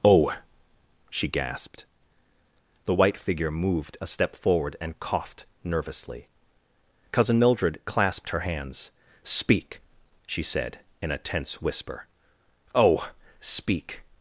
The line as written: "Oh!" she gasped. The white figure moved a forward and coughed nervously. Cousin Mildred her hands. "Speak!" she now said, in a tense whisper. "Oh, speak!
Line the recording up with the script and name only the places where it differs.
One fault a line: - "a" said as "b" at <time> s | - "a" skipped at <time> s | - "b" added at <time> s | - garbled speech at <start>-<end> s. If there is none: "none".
- "step" added at 4.1 s
- "clasped" added at 7.8 s
- "now" skipped at 10.4 s